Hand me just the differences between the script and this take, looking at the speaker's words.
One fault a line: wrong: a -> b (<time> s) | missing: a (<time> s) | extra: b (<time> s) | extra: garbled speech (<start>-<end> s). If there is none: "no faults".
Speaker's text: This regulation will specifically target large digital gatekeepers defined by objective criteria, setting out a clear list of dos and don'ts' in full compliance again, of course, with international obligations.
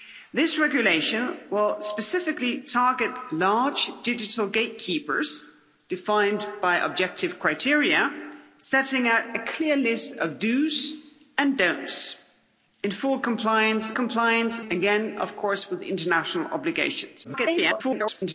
extra: compliance (13.9 s)
extra: garbled speech (17.2-18.3 s)